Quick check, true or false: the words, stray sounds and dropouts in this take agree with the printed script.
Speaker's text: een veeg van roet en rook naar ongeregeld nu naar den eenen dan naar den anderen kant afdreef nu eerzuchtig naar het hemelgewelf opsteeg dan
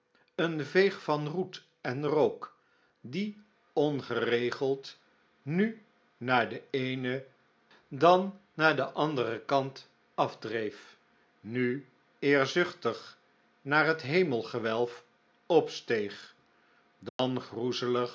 false